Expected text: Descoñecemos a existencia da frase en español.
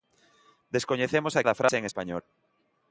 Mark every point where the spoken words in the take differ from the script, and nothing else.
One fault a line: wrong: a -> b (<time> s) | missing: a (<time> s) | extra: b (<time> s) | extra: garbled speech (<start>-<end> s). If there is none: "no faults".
missing: existencia (1.4 s)